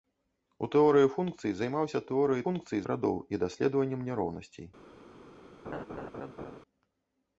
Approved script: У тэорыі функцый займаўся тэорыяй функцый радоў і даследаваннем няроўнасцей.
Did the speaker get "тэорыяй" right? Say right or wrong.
right